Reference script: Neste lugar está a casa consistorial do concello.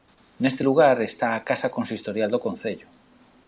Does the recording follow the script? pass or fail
pass